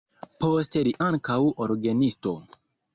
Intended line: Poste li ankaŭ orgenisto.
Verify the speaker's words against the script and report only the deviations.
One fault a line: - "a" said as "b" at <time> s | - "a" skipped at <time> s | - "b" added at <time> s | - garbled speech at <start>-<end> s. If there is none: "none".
none